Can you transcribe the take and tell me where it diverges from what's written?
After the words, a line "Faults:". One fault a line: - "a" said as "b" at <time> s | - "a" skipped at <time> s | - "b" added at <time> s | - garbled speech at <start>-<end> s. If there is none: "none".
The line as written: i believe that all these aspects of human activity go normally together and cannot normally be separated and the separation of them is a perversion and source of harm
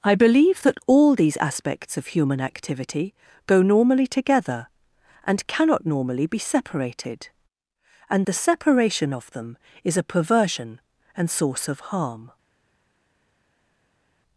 i believe that all these aspects of human activity go normally together and cannot normally be separated and the separation of them is a perversion and source of harm
Faults:
none